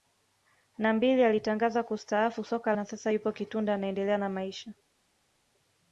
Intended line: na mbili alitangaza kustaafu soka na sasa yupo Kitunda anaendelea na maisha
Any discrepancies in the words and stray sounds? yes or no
no